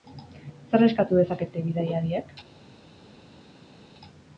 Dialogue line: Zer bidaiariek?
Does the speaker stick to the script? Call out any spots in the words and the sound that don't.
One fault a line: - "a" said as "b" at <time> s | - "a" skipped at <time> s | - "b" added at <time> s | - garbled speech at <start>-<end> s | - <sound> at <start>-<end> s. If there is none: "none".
- "eskatu dezakete" added at 0.9 s